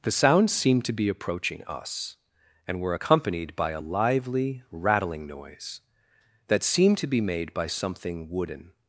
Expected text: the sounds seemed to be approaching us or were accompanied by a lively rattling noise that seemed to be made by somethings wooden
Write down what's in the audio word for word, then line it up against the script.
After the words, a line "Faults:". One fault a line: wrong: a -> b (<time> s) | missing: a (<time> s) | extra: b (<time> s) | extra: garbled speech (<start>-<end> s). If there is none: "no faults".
the sounds seemed to be approaching us and were accompanied by a lively rattling noise that seemed to be made by something wooden
Faults:
wrong: or -> and (2.7 s)
wrong: somethings -> something (7.7 s)